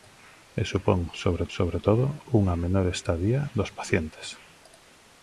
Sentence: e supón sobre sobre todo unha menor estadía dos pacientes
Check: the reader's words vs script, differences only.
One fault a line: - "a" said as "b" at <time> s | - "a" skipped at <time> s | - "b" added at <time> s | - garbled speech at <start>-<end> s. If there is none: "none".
none